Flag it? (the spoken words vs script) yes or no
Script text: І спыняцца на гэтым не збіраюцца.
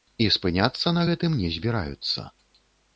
no